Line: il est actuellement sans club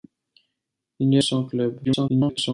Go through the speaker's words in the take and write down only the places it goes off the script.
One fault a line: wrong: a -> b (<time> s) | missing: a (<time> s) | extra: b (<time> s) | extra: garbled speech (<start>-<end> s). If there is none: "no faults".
missing: actuellement (1.2 s)
extra: garbled speech (1.8-2.5 s)